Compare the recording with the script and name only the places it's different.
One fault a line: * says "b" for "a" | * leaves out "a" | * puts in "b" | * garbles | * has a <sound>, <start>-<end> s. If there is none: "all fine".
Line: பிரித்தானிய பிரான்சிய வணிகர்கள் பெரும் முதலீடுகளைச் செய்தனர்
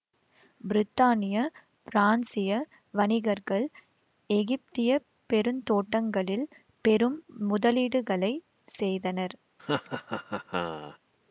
* puts in "எகிப்திய பெருந்தோட்டங்களில்"
* has a laugh, 9.6-11.0 s